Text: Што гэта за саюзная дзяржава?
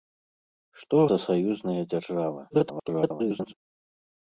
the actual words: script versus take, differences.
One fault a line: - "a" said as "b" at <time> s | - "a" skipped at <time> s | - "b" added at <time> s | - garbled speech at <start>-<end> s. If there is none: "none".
- "гэта" skipped at 1.0 s
- garbled speech at 2.5-3.5 s